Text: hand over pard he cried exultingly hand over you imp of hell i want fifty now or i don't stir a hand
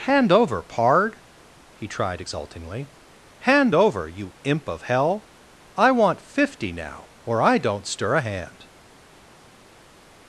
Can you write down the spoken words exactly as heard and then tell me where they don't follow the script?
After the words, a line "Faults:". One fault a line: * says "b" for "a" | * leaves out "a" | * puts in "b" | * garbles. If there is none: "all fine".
hand over pard he tried exultingly hand over you imp of hell i want fifty now or i don't stir a hand
Faults:
* says "tried" for "cried"